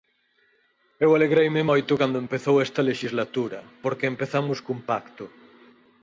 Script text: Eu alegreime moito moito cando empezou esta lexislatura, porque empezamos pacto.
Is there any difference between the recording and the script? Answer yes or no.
yes